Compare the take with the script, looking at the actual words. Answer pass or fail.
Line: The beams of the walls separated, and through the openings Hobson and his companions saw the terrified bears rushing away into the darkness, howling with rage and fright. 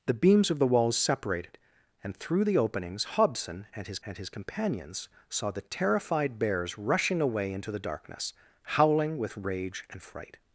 fail